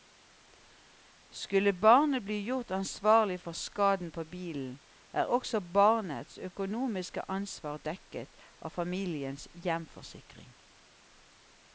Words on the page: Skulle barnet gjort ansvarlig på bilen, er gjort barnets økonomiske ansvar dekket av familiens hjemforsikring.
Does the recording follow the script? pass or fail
fail